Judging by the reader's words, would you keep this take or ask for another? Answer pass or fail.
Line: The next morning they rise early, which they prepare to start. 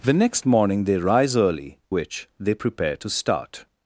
pass